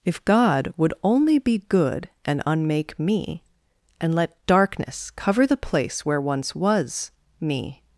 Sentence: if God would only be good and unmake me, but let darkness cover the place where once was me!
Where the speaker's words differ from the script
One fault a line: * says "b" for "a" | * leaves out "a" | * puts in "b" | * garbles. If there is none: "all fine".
* says "and" for "but"